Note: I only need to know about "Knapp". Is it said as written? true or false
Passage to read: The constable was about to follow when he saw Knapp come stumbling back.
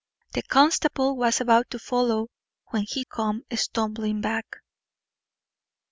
false